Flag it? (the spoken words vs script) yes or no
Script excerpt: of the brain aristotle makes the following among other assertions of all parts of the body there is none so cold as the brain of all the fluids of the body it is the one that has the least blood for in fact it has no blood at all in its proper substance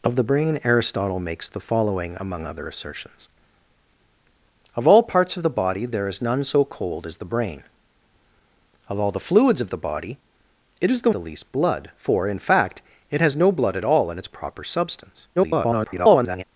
yes